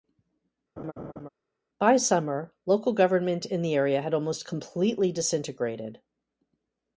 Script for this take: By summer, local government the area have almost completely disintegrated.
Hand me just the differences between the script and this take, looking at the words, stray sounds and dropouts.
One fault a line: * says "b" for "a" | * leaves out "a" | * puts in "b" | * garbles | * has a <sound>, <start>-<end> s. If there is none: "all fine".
* has a laugh, 0.8-1.3 s
* puts in "in"
* says "had" for "have"